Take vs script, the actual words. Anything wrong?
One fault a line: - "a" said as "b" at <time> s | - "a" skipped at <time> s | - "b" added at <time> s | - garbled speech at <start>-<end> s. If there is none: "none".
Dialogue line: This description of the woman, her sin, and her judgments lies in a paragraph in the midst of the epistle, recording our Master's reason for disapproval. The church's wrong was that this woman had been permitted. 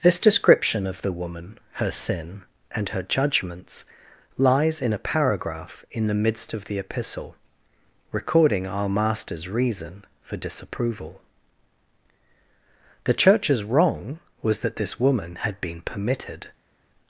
none